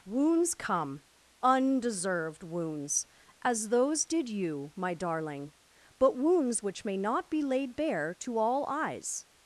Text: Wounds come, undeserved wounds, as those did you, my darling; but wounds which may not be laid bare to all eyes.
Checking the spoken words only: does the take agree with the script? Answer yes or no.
yes